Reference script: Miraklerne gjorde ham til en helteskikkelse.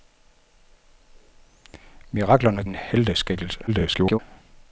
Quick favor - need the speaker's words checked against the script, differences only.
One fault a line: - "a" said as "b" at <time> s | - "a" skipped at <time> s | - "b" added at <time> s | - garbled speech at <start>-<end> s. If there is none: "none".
- "gjorde ham til" skipped at 2.6 s
- garbled speech at 3.7-4.2 s